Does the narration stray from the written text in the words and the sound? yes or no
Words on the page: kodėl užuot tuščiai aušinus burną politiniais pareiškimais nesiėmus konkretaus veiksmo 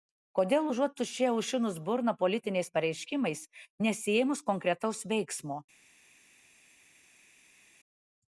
no